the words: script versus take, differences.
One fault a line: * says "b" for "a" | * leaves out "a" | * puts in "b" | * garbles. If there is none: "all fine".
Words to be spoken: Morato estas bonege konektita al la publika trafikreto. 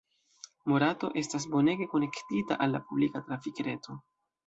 all fine